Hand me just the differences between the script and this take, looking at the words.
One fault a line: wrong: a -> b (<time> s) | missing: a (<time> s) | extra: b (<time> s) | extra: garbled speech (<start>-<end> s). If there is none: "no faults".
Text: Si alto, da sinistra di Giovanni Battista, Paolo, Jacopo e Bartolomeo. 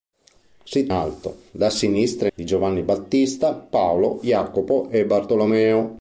no faults